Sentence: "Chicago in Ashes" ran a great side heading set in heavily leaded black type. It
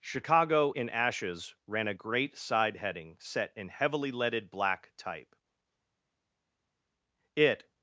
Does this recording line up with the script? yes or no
yes